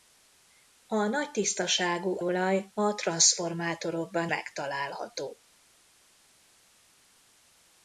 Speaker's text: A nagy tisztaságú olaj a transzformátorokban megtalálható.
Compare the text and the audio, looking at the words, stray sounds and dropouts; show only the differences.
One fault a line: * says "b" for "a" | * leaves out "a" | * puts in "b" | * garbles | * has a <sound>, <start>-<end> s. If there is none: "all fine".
all fine